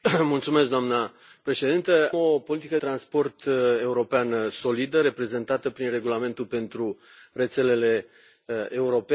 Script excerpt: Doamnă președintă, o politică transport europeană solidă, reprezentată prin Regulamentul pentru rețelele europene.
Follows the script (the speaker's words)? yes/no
yes